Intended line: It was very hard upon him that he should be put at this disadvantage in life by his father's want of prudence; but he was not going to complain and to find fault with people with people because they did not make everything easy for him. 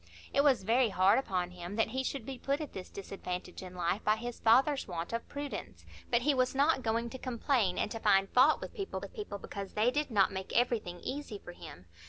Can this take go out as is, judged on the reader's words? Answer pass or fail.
pass